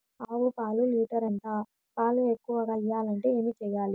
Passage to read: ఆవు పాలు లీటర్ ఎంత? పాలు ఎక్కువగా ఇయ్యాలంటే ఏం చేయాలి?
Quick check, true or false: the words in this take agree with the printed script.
true